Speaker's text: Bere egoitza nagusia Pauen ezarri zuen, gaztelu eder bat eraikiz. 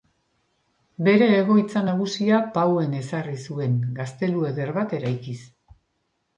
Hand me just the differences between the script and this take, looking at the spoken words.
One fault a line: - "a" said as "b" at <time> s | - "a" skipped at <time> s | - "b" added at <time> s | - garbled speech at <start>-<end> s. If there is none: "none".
none